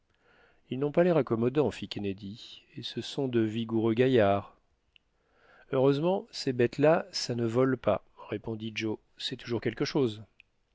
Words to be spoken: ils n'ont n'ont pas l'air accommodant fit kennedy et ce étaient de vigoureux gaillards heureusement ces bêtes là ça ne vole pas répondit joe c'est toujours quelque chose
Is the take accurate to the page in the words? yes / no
no